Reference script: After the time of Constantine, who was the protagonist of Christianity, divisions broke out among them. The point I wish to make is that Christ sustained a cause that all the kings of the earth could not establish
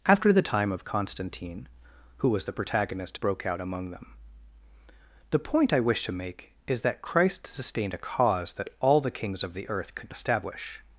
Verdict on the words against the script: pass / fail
fail